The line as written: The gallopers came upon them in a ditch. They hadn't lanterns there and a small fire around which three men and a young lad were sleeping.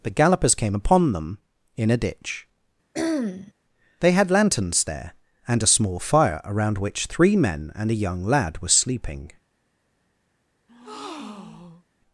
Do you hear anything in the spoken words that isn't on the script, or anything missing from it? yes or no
yes